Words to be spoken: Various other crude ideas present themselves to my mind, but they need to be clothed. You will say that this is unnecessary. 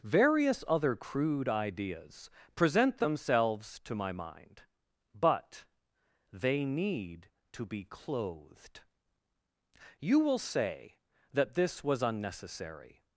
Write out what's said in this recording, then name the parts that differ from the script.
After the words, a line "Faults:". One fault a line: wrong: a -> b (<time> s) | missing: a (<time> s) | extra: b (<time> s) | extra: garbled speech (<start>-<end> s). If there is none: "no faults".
Various other crude ideas present themselves to my mind, but they need to be clothed. You will say that this was unnecessary.
Faults:
wrong: is -> was (11.8 s)